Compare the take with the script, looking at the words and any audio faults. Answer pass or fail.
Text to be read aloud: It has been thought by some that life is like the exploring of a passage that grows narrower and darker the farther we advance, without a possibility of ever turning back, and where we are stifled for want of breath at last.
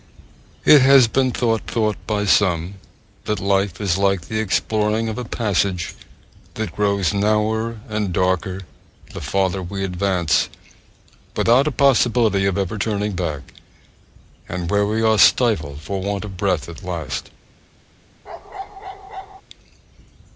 fail